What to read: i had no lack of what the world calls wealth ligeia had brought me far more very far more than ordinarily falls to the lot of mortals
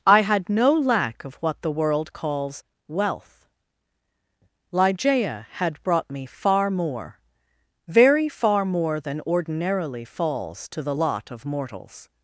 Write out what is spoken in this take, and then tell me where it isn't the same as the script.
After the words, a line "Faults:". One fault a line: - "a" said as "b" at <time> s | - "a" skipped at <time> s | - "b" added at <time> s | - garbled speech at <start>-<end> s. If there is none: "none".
i had no lack of what the world calls wealth ligeia had brought me far more very far more than ordinarily falls to the lot of mortals
Faults:
none